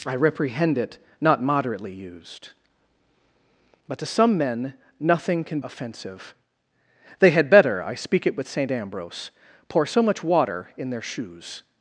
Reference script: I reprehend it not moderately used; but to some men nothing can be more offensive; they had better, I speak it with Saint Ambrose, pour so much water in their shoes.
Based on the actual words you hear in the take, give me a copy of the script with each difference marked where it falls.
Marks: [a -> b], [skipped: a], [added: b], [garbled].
I reprehend it not moderately used; but to some men nothing can [skipped: be more] offensive; they had better, I speak it with Saint Ambrose, pour so much water in their shoes.